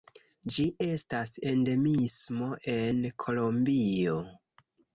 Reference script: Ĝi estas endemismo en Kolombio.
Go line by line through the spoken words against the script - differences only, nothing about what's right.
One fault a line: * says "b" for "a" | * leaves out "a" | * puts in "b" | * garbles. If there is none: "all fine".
all fine